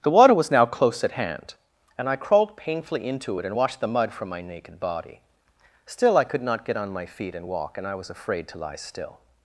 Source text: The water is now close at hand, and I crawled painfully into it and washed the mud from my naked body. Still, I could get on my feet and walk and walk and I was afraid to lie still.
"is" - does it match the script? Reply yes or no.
no